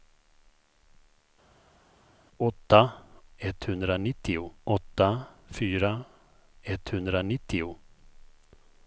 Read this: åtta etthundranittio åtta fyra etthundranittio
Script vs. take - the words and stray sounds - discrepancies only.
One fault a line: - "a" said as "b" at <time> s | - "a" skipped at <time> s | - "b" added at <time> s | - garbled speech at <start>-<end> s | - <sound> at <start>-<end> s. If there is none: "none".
none